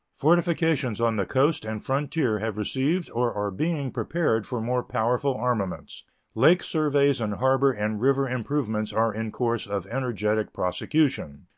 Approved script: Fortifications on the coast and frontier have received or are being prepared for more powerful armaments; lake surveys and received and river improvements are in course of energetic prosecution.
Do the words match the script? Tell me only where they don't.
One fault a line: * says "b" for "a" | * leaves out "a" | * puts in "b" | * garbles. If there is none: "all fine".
* says "harbor" for "received"